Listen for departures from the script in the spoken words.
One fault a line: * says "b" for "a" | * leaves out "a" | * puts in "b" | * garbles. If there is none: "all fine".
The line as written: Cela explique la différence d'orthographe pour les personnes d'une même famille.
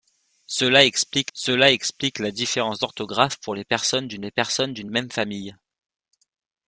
* puts in "cela explique"
* puts in "les personnes d'une"